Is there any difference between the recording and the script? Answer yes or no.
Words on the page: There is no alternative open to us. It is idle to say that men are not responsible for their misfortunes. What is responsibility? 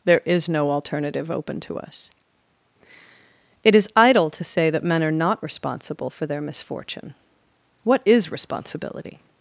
yes